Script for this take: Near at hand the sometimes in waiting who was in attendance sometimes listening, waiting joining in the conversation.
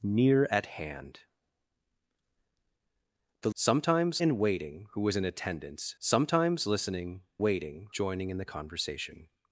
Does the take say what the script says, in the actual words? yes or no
yes